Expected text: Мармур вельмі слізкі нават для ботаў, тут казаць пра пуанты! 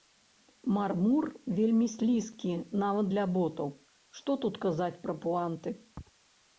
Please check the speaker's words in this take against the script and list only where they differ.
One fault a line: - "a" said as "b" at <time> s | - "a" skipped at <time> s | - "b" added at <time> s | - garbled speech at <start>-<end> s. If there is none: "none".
- "што" added at 4.2 s